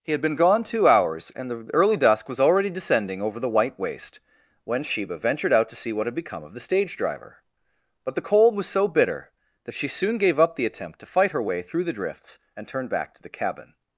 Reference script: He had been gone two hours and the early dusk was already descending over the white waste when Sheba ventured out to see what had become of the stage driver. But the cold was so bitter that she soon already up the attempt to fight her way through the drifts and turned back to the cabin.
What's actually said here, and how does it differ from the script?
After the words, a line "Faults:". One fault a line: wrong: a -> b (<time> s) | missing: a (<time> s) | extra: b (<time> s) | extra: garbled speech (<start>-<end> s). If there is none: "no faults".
He had been gone two hours and the early dusk was already descending over the white waste when Sheba ventured out to see what had become of the stage driver. But the cold was so bitter that she soon gave up the attempt to fight her way through the drifts and turned back to the cabin.
Faults:
wrong: already -> gave (10.2 s)